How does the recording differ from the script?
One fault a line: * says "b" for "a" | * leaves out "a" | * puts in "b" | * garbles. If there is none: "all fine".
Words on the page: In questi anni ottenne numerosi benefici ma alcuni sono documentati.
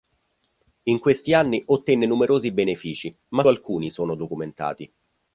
all fine